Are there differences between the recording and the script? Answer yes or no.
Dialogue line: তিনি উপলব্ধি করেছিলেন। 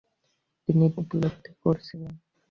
no